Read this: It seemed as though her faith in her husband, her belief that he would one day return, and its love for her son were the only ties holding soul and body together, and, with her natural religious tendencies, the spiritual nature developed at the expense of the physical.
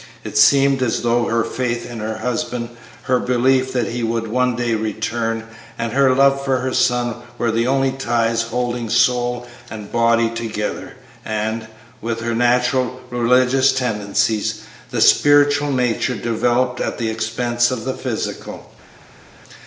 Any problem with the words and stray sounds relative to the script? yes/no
yes